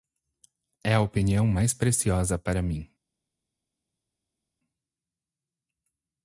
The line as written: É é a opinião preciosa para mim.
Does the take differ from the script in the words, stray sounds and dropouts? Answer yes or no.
yes